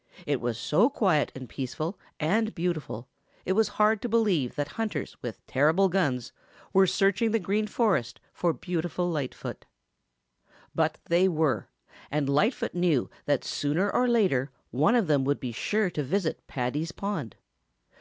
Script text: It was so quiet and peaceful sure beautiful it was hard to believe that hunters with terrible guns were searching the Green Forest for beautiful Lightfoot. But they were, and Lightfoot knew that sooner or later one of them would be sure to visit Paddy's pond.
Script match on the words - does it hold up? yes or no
no